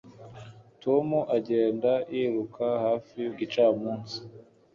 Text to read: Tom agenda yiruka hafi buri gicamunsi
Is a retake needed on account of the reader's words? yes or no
yes